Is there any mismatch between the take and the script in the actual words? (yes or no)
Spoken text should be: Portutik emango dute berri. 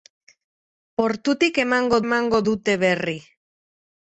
yes